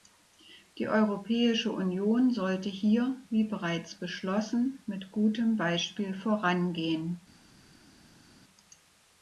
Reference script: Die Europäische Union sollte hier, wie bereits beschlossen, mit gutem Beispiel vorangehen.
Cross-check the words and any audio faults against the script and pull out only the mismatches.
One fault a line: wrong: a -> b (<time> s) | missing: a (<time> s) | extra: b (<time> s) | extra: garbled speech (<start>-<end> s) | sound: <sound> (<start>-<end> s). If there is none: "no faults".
no faults